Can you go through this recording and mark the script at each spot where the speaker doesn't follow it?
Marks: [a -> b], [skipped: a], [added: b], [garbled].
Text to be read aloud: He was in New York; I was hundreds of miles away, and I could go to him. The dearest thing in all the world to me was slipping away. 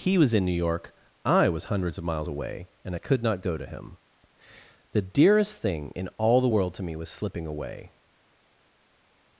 He was in New York; I was hundreds of miles away, and I could [added: not] go to him. The dearest thing in all the world to me was slipping away.